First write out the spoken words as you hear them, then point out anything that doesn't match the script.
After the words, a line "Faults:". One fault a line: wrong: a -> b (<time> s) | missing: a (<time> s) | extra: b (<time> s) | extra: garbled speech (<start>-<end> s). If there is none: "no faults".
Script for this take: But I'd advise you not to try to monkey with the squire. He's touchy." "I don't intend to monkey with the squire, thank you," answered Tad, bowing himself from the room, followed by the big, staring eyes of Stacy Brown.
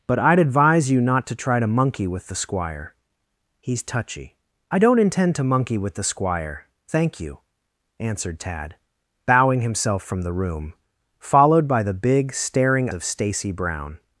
But I'd advise you not to try to monkey with the squire. He's touchy." "I don't intend to monkey with the squire, thank you," answered Tad, bowing himself from the room, followed by the big, staring of Stacy Brown.
Faults:
missing: eyes (12.9 s)